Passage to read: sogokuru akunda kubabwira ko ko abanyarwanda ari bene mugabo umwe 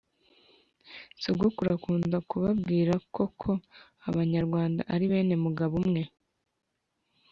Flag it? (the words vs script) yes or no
no